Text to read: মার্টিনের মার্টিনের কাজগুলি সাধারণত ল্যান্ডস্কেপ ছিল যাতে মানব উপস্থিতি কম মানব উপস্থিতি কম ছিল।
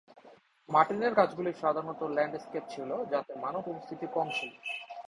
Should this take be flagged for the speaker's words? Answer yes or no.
yes